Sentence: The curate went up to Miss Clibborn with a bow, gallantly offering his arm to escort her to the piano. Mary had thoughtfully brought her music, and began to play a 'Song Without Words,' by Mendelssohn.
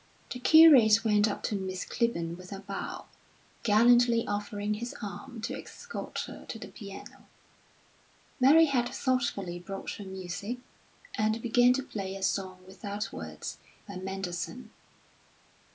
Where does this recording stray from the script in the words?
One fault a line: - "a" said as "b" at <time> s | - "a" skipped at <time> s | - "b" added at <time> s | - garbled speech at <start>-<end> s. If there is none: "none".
none